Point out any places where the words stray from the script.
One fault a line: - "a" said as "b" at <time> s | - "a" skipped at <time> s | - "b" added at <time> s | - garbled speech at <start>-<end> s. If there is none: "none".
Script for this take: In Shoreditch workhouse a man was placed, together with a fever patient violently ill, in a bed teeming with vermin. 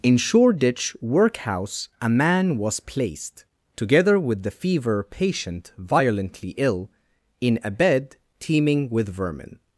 - "a" said as "the" at 4.4 s